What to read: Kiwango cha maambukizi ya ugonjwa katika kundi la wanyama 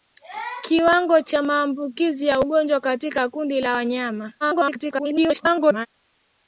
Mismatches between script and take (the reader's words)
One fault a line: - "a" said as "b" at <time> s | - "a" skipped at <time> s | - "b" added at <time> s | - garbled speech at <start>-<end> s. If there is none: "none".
- garbled speech at 4.4-5.9 s